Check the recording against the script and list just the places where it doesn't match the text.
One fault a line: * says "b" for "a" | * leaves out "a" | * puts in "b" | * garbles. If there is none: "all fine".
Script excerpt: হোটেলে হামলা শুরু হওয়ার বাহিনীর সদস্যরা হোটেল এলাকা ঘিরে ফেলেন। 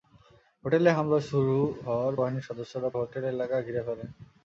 all fine